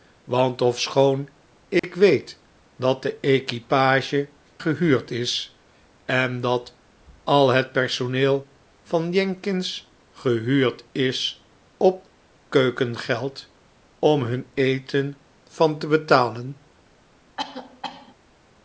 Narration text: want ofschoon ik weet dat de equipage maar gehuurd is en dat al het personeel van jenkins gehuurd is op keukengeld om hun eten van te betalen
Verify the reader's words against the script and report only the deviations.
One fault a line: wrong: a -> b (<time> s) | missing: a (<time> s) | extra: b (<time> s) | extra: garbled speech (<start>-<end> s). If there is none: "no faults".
missing: maar (4.3 s)